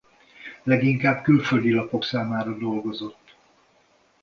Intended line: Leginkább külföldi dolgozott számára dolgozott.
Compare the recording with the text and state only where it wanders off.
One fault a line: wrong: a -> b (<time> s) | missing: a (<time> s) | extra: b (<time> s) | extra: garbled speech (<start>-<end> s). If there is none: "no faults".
wrong: dolgozott -> lapok (1.7 s)